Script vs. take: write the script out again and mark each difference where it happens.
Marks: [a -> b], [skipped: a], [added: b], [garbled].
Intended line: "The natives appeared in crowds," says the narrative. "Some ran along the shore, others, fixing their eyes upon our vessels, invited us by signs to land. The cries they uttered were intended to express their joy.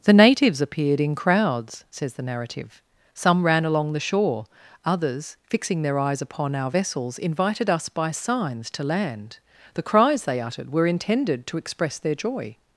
"The natives appeared in crowds," says the narrative. "Some ran along the shore, others, fixing their eyes upon our vessels, invited us by signs to land. The cries they uttered were intended to express their joy.